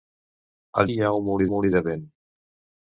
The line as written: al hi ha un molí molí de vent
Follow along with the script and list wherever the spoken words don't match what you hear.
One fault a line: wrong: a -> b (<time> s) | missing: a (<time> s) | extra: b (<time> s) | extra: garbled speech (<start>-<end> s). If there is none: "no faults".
no faults